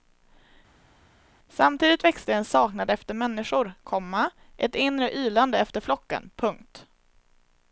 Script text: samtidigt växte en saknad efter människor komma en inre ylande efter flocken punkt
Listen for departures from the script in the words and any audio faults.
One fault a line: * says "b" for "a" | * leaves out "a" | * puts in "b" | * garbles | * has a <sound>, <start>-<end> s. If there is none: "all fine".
* says "ett" for "en"